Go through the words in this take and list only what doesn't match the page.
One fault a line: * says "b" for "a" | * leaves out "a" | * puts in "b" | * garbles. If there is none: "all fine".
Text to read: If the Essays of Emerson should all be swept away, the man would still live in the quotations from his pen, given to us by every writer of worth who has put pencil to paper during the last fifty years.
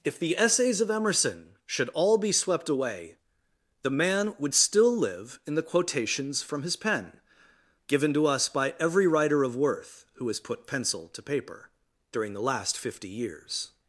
all fine